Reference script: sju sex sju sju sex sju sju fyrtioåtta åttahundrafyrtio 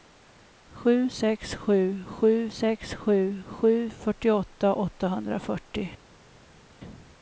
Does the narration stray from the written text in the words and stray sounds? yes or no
no